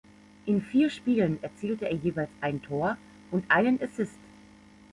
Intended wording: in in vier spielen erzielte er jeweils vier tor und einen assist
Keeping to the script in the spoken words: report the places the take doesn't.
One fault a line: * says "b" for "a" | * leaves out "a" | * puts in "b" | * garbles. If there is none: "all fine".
* leaves out "in"
* says "ein" for "vier"